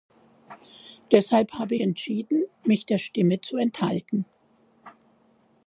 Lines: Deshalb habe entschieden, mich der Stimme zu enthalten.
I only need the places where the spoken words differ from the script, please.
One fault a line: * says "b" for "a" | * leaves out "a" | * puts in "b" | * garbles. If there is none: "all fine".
all fine